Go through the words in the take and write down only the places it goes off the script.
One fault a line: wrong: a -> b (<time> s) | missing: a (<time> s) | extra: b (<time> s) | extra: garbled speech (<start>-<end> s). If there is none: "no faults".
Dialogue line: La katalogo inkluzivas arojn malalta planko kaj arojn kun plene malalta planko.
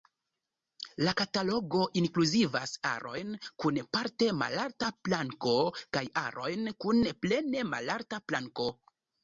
extra: kun parte (3.6 s)